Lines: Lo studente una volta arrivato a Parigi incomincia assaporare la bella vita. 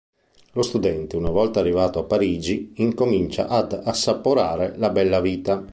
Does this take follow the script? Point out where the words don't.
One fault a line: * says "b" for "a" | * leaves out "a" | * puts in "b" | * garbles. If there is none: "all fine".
* puts in "ad"